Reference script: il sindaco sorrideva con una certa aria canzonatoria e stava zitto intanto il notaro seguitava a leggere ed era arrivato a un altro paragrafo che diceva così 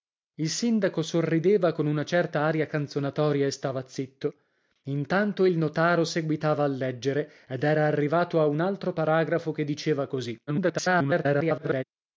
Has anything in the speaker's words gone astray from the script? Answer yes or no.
yes